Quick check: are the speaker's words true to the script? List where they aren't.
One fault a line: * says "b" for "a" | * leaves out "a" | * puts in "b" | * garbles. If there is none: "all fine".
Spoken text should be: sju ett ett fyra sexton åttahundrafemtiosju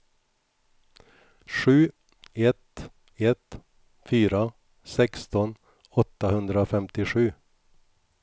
all fine